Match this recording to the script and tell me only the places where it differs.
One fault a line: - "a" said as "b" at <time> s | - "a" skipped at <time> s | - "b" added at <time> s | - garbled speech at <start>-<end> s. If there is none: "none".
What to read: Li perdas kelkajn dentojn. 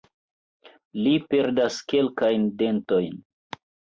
none